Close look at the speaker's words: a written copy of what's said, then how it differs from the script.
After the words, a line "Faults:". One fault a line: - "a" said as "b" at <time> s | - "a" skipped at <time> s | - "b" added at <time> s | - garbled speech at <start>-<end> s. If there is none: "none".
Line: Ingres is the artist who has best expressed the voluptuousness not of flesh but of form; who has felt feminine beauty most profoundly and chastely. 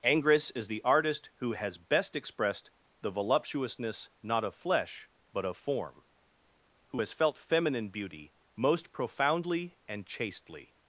Ingres is the artist who has best expressed the voluptuousness not of flesh but of form; who has felt feminine beauty most profoundly and chastely.
Faults:
none